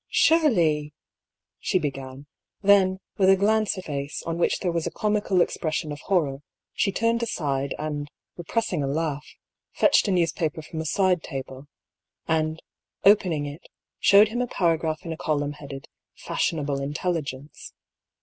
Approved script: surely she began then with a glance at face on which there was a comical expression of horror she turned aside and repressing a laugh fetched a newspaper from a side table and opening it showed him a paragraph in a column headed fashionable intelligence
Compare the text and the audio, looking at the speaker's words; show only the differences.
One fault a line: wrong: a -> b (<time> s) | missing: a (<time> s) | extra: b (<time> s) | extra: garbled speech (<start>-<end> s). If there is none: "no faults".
no faults